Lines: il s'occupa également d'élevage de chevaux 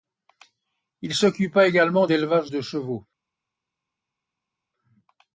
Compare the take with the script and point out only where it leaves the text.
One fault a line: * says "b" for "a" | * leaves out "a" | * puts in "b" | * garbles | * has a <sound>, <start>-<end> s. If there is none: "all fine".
all fine